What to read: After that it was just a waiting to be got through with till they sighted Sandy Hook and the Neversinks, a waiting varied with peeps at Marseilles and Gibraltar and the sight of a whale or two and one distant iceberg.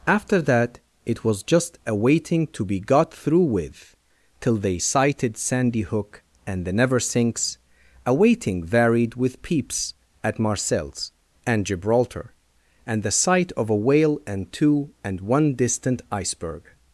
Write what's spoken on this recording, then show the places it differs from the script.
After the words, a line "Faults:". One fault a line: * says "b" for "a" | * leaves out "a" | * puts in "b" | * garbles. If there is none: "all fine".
After that it was just a waiting to be got through with till they sighted Sandy Hook and the Neversinks, a waiting varied with peeps at Marseilles and Gibraltar and the sight of a whale and two and one distant iceberg.
Faults:
* says "and" for "or"